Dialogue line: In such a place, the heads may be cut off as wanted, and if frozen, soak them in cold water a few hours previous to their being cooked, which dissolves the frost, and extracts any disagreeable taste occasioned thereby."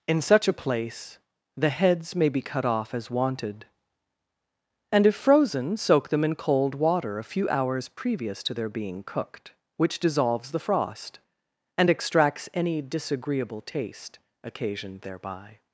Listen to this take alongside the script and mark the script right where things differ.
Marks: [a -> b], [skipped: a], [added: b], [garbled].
In such a place, the heads may be cut off as wanted, and if frozen, soak them in cold water a few hours previous to their being cooked, which dissolves the frost, and extracts any disagreeable taste occasioned thereby."